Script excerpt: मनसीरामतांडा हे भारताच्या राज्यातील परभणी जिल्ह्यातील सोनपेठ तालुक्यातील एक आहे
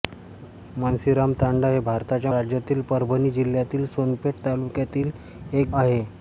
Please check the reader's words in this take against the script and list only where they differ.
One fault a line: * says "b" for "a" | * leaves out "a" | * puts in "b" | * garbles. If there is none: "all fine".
all fine